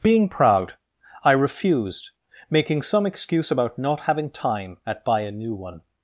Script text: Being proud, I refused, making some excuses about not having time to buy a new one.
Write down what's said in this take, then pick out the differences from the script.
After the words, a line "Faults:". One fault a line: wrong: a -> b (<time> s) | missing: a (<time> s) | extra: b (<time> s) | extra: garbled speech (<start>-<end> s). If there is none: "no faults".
Being proud, I refused, making some excuse about not having time at buy a new one.
Faults:
wrong: excuses -> excuse (3.0 s)
wrong: to -> at (4.9 s)